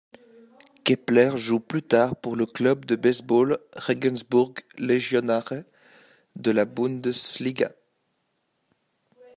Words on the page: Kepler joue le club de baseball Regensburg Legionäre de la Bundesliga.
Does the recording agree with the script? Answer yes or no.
no